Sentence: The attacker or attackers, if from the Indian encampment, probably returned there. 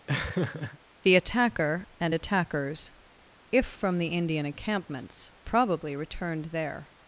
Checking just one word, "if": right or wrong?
right